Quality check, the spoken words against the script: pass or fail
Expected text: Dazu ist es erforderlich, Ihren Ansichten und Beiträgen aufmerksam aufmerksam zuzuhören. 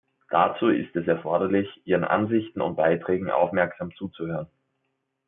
fail